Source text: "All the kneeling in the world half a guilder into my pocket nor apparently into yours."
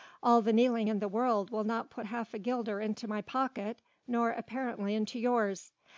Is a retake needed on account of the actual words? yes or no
yes